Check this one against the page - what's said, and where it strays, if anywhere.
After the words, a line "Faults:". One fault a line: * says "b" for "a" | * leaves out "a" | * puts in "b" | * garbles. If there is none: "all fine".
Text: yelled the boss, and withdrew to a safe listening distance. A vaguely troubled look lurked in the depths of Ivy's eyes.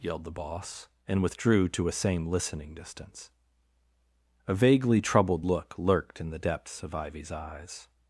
yelled the boss, and withdrew to a same listening distance. A vaguely troubled look lurked in the depths of Ivy's eyes.
Faults:
* says "same" for "safe"